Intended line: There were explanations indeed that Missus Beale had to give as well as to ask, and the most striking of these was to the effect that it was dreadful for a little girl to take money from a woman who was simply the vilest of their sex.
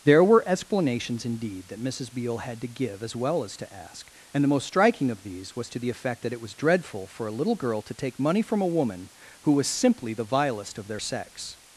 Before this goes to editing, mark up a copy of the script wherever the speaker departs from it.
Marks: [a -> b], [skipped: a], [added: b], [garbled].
There were explanations indeed that Missus Beale had to give as well as to ask, and the most striking of these was to the effect that it was dreadful for a little girl to take money from a woman who was simply the vilest of their sex.